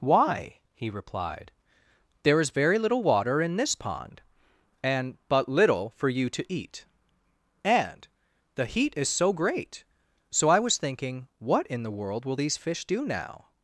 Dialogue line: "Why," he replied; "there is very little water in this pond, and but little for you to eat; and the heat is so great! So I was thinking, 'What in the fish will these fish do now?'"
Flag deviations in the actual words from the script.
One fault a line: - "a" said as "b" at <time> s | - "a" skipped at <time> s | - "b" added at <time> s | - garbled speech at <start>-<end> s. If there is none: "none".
- "fish" said as "world" at 11.9 s